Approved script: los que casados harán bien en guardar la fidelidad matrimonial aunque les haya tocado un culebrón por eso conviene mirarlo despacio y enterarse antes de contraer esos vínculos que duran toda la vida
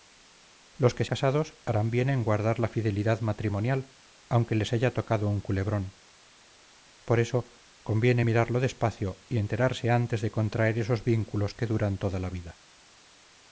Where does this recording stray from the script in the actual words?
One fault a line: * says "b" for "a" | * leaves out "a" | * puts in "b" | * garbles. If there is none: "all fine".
all fine